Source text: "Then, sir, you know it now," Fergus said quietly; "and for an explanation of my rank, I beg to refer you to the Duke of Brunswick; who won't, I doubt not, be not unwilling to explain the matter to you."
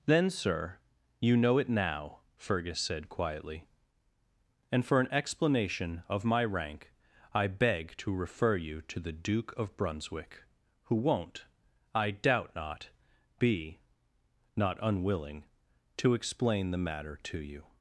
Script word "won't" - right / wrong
right